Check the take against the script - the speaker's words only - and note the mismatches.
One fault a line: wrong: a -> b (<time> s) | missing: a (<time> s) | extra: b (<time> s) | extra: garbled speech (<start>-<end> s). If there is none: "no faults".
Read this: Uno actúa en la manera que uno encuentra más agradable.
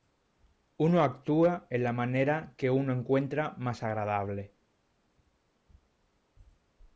no faults